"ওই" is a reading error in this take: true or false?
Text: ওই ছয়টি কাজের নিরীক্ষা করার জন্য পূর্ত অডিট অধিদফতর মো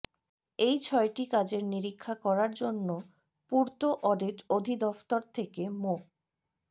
true